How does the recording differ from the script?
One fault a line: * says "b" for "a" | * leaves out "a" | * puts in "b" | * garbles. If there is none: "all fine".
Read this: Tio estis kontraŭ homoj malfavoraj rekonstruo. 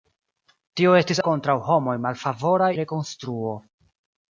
all fine